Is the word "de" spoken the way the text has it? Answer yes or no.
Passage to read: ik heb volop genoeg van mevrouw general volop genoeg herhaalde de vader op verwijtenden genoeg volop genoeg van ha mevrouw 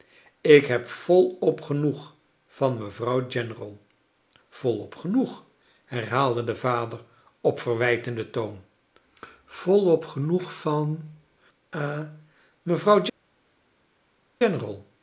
yes